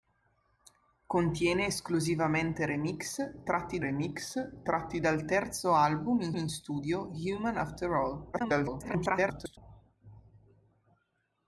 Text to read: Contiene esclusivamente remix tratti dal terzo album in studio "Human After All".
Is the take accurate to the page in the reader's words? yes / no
no